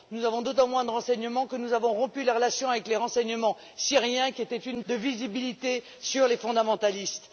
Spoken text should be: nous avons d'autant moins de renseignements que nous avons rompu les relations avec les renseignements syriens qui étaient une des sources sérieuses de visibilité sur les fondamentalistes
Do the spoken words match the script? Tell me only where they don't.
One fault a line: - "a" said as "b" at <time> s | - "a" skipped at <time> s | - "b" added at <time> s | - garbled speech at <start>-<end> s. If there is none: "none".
- "des sources sérieuses" skipped at 4.8 s